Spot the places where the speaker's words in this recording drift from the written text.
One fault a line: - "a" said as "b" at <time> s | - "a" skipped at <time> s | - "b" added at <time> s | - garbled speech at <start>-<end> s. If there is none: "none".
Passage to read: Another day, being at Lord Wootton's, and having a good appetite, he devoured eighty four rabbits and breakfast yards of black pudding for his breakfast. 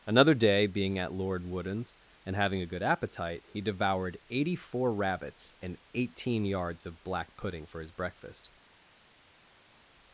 - "breakfast" said as "eighteen" at 5.9 s